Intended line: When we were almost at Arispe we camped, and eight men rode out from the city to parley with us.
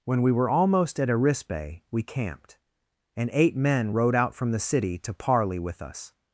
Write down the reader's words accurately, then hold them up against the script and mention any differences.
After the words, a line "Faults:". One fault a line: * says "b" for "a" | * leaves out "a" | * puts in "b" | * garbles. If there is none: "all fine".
When we were almost at Arispe we camped, and eight men rode out from the city to parley with us.
Faults:
all fine